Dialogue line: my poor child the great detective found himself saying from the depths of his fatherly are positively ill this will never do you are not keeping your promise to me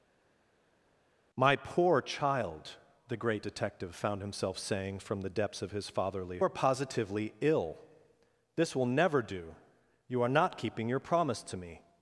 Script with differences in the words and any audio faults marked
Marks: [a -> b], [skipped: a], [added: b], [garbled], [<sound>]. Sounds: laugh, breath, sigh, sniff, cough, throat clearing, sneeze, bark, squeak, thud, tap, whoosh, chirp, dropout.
my poor child the great detective found himself saying from the depths of his fatherly are positively ill this will never do you are not keeping your promise to me